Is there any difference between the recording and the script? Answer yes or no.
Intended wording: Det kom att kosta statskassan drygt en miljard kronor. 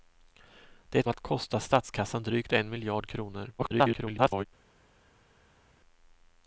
yes